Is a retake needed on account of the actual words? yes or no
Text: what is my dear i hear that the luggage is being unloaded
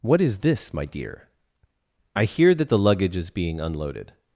yes